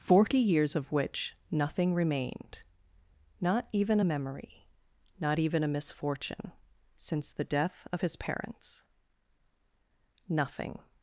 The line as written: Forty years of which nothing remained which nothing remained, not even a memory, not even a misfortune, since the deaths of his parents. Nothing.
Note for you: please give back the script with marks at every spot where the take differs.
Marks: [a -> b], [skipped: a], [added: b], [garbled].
Forty years of which nothing remained [skipped: which nothing remained,] not even a memory, not even a misfortune, since the [deaths -> death] of his parents. Nothing.